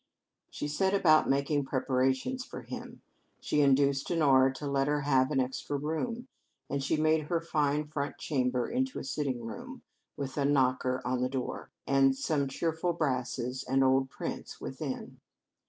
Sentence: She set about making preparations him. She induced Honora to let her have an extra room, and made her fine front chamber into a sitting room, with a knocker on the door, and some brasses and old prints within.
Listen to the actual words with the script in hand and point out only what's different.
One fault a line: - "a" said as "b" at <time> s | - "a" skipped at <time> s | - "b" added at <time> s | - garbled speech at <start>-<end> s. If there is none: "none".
- "for" added at 2.4 s
- "she" added at 6.8 s
- "cheerful" added at 12.5 s